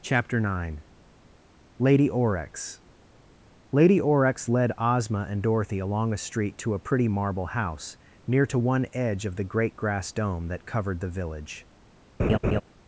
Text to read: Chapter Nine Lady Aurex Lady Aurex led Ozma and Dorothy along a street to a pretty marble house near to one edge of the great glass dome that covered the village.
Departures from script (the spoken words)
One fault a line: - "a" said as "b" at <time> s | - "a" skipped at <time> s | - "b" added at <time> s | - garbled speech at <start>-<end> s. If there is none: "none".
- "glass" said as "grass" at 9.8 s